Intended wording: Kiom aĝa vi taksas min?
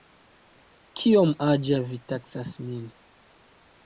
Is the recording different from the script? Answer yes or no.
no